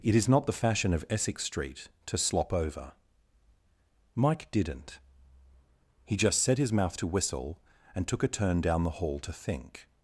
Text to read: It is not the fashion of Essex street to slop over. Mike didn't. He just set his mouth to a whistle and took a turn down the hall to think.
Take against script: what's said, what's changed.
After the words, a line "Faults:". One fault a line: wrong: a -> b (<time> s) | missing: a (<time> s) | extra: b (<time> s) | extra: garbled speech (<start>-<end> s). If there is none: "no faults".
It is not the fashion of Essex street to slop over. Mike didn't. He just set his mouth to whistle and took a turn down the hall to think.
Faults:
missing: a (7.1 s)